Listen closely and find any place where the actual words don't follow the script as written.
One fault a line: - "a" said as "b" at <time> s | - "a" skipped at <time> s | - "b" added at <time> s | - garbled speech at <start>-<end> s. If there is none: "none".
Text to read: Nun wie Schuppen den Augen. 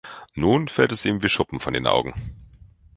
- "fällt es ihm" added at 0.7 s
- "von" added at 1.6 s